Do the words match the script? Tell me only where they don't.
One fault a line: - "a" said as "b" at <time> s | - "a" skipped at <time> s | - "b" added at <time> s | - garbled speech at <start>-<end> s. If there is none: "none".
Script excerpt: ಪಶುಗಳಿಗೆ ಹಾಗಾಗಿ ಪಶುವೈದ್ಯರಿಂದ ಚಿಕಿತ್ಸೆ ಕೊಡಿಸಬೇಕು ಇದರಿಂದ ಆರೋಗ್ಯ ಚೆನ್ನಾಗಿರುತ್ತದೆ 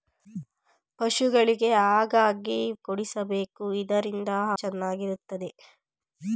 - "ಪಶುವೈದ್ಯರಿಂದ ಚಿಕಿತ್ಸೆ" skipped at 2.6 s
- "ಆರೋಗ್ಯ" skipped at 4.3 s